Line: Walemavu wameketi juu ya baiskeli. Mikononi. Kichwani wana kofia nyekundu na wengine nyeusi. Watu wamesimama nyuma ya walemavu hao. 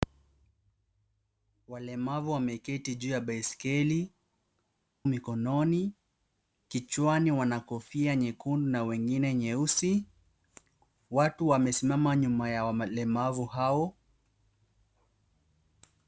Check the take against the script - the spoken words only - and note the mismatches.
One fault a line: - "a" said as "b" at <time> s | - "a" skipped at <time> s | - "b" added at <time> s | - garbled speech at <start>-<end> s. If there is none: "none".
none